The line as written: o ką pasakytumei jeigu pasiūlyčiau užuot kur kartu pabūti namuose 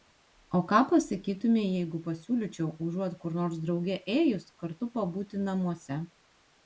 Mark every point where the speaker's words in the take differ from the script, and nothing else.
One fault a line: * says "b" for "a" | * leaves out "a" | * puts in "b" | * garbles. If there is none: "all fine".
* puts in "nors drauge ėjus"